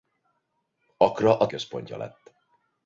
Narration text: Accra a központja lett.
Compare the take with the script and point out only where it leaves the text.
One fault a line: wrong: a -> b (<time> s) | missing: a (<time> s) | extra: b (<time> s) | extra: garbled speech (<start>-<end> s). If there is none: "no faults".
no faults